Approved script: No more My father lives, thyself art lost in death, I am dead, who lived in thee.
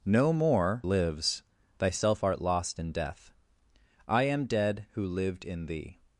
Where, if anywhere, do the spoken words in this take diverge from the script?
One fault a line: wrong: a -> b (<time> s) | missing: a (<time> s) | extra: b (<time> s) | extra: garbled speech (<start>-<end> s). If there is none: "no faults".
missing: My father (0.8 s)